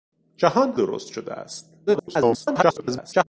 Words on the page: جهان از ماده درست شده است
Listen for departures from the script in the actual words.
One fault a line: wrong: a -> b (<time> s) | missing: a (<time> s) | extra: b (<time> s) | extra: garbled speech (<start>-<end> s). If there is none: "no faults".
missing: از ماده (0.7 s)
extra: garbled speech (1.9-3.2 s)